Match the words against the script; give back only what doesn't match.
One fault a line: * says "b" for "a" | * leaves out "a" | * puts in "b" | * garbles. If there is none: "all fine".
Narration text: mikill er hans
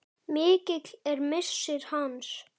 * puts in "missir"